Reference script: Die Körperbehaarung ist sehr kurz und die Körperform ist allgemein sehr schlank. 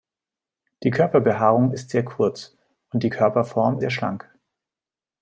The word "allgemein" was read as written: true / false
false